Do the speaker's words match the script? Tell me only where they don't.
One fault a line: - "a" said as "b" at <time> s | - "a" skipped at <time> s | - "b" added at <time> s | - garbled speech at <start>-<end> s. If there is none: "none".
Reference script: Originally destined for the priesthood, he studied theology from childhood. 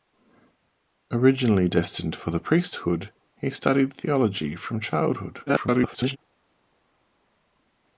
- garbled speech at 5.5-6.2 s